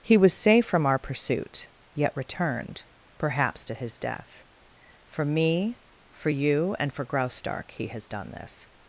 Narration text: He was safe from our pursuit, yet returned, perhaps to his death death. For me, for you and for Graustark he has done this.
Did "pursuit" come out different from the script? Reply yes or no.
no